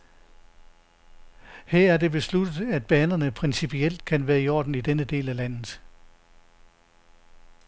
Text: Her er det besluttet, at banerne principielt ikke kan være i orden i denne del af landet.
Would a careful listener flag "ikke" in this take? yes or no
yes